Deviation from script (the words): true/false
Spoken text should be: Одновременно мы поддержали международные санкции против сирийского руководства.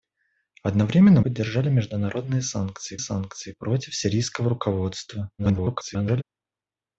true